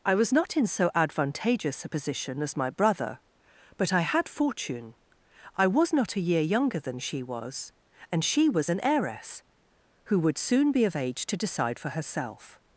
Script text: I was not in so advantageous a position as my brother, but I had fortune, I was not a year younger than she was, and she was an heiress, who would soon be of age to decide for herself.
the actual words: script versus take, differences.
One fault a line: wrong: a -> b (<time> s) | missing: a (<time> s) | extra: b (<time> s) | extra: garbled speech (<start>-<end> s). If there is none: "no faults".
no faults